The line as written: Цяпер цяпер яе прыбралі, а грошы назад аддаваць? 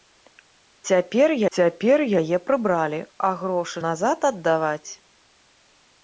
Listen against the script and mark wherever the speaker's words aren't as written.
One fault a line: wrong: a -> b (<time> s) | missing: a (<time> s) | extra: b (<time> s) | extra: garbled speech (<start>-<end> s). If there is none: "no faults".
no faults